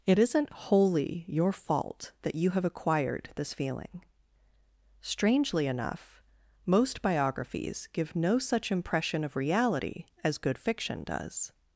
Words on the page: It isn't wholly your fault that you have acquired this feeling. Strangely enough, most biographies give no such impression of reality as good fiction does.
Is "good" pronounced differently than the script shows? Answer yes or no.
no